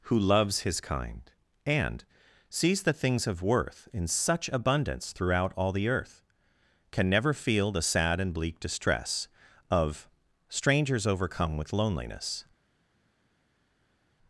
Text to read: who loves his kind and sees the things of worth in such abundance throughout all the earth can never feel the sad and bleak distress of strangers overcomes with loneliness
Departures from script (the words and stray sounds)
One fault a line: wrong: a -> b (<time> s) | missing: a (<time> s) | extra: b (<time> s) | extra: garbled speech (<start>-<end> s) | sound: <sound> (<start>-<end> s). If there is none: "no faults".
wrong: overcomes -> overcome (11.1 s)